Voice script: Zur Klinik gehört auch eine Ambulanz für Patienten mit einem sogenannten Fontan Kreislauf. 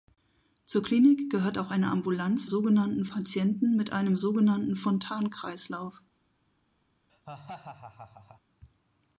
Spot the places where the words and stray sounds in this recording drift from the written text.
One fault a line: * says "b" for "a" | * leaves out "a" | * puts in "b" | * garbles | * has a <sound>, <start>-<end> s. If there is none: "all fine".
* says "sogenannten" for "für"
* has a laugh, 7.1-8.4 s